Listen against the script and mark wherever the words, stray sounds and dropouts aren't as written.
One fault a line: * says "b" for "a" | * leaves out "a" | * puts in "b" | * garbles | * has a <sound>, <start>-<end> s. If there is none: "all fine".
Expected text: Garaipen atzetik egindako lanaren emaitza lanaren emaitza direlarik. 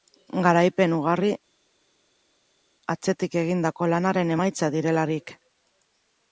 * puts in "ugari"
* leaves out "lanaren emaitza"